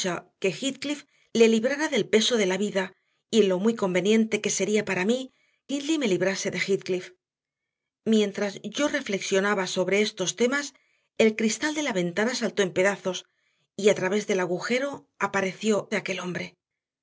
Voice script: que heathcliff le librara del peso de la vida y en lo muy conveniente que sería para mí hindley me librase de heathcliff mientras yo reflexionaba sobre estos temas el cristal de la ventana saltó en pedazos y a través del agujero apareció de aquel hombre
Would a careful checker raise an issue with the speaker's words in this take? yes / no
no